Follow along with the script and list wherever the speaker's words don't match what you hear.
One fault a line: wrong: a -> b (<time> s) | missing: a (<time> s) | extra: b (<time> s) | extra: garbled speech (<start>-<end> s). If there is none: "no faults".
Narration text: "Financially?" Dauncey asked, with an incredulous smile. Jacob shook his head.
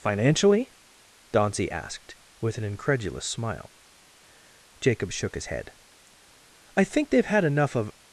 extra: I think they've had enough of (6.8 s)